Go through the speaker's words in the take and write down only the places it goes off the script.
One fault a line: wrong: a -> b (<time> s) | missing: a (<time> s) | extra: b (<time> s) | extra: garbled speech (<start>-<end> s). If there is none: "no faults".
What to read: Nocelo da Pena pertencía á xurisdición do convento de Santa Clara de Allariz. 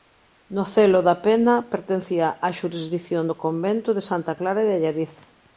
no faults